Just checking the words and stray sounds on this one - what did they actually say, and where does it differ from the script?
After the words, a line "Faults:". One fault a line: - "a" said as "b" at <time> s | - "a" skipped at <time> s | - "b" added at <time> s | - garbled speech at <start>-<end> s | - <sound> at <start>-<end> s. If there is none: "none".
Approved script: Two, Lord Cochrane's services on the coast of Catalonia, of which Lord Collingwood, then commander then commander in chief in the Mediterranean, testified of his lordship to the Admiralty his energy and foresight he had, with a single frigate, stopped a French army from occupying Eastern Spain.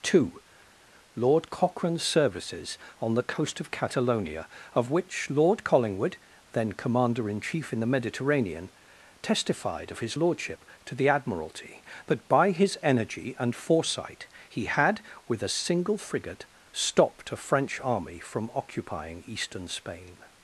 Two, Lord Cochrane's services on the coast of Catalonia, of which Lord Collingwood, then commander in chief in the Mediterranean, testified of his lordship to the Admiralty that by his energy and foresight he had, with a single frigate, stopped a French army from occupying Eastern Spain.
Faults:
- "then commander" skipped at 7.3 s
- "that by" added at 12.1 s